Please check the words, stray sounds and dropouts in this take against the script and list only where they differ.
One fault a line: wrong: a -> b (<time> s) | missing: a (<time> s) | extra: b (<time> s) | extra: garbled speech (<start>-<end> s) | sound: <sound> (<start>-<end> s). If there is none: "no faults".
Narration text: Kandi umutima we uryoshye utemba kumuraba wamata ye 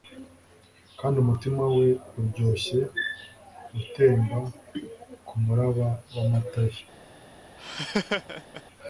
sound: laugh (7.6-8.6 s)